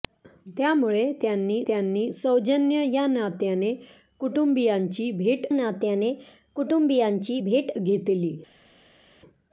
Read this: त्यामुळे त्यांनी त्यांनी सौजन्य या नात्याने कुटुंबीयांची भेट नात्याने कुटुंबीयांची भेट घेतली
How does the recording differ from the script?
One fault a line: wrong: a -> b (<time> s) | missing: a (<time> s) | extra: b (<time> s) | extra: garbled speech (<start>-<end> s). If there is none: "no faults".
no faults